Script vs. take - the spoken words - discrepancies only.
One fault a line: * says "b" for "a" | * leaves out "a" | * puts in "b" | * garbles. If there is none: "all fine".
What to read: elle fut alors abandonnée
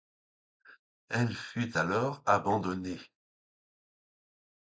all fine